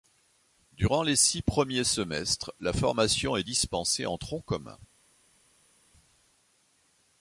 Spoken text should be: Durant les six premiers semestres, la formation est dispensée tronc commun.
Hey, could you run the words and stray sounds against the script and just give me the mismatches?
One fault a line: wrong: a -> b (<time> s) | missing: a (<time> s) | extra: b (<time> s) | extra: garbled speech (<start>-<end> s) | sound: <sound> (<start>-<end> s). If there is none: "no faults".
extra: en (4.1 s)